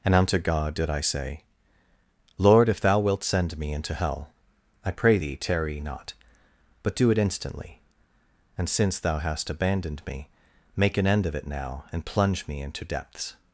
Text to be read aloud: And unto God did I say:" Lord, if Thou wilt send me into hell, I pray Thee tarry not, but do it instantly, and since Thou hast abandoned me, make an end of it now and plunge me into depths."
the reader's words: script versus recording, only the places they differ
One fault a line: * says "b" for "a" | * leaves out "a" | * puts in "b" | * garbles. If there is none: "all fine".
all fine